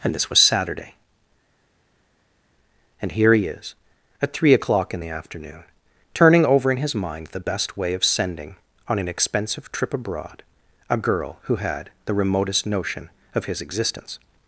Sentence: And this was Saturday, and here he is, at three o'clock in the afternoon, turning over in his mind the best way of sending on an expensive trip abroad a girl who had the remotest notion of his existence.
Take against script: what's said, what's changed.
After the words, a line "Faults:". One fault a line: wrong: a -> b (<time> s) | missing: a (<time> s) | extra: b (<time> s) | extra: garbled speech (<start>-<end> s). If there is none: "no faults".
And this was Saturday, and here he is, at three o'clock in the afternoon, turning over in his mind the best way of sending on an expensive trip abroad a girl who had the remotest notion of his existence.
Faults:
no faults